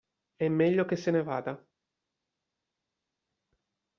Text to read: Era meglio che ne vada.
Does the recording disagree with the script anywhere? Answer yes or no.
yes